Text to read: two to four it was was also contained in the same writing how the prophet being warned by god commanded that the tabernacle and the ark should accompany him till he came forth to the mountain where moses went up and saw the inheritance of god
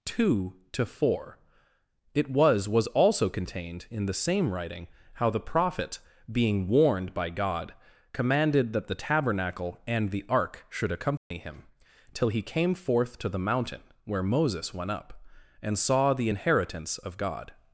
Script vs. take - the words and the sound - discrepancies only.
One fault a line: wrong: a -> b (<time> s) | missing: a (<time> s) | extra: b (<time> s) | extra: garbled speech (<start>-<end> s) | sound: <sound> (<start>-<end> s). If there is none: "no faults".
sound: dropout (11.2-11.3 s)